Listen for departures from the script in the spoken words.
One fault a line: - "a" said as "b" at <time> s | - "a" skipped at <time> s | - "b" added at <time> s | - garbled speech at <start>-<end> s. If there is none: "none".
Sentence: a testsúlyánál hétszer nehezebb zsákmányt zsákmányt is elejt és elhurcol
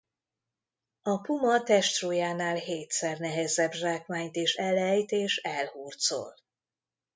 - "puma" added at 1.2 s
- "zsákmányt" skipped at 4.3 s